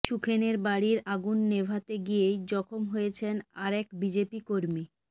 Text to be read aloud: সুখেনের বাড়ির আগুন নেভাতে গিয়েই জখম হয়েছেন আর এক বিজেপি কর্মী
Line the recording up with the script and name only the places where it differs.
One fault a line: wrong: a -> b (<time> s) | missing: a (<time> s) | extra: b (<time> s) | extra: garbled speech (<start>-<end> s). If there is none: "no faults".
no faults